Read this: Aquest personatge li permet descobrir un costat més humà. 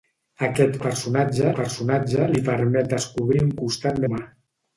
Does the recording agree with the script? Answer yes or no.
no